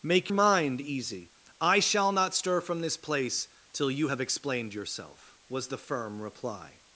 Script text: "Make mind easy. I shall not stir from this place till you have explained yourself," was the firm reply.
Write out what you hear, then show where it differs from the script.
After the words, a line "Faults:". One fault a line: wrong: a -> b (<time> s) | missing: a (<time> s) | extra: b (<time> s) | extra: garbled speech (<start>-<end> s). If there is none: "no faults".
"Make mind easy. I shall not stir from this place till you have explained yourself," was the firm reply.
Faults:
no faults